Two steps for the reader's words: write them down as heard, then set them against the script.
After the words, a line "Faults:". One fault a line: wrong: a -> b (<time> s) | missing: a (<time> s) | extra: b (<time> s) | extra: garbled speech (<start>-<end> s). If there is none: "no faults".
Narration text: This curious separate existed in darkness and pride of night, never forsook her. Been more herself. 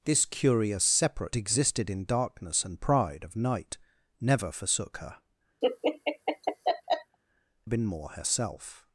This curious separate existed in darkness and pride of night, never forsook her. Been more herself.
Faults:
no faults